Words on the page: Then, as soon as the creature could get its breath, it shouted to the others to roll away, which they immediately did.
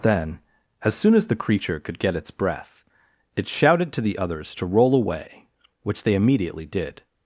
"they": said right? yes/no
yes